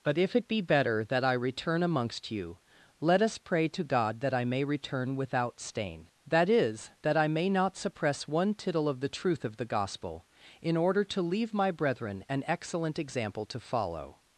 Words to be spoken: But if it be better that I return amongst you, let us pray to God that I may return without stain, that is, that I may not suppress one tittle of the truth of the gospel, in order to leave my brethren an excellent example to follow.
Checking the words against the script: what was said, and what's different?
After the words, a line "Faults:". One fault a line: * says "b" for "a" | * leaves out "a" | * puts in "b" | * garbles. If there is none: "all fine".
But if it be better that I return amongst you, let us pray to God that I may return without stain, that is, that I may not suppress one tittle of the truth of the gospel, in order to leave my brethren an excellent example to follow.
Faults:
all fine